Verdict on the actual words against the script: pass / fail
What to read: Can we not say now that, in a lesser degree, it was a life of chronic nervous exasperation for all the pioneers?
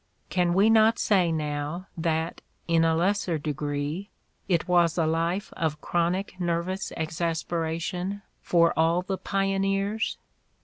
pass